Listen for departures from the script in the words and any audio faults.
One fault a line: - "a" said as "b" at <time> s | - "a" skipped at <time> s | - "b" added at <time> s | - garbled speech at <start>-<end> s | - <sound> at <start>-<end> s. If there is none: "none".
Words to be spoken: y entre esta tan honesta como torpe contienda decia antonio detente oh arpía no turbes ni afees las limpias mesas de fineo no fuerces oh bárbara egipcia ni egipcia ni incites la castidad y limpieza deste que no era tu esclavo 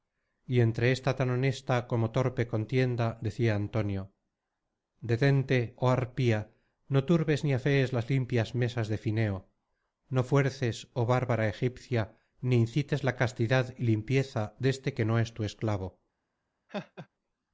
- "egipcia ni" skipped at 12.6 s
- "era" said as "es" at 15.2 s
- laugh at 16.7-17.1 s